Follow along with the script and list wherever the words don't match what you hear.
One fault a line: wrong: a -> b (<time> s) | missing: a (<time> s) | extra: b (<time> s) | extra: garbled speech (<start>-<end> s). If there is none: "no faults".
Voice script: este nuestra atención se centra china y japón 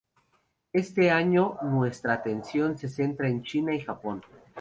extra: año (1.1 s)
extra: en (3.3 s)